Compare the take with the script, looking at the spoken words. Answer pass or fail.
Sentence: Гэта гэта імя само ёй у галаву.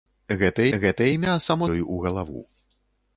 pass